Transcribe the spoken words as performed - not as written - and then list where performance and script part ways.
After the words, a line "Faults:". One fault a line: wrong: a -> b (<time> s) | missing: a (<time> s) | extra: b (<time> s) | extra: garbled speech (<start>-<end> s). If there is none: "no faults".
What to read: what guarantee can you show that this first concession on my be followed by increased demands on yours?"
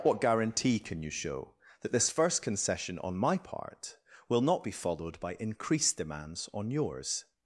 what guarantee can you show that this first concession on my part will not be followed by increased demands on yours?"
Faults:
extra: part will not (3.4 s)